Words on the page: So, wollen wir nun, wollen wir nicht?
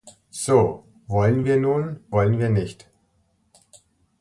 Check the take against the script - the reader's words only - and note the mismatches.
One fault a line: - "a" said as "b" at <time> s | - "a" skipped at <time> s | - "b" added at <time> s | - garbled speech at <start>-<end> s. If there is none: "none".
none